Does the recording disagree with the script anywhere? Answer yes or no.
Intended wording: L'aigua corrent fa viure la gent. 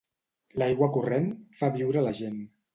no